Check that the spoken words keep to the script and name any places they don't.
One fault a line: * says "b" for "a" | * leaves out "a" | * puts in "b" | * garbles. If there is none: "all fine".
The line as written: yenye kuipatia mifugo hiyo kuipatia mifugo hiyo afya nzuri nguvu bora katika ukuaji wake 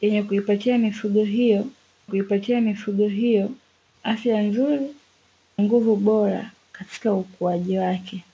all fine